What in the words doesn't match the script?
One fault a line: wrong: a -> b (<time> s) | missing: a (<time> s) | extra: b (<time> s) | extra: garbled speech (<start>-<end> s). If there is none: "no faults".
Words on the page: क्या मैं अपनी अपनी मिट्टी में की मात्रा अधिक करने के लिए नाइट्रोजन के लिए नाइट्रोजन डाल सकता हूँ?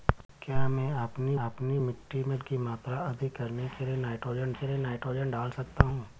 no faults